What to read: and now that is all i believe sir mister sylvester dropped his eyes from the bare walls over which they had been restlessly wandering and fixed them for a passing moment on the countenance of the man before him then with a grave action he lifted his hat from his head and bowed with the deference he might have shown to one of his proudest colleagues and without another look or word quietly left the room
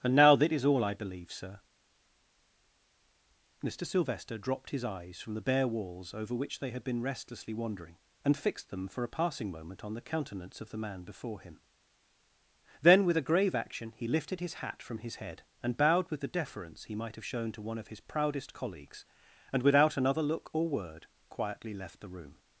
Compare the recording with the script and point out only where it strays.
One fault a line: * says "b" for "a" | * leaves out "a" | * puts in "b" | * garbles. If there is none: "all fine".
all fine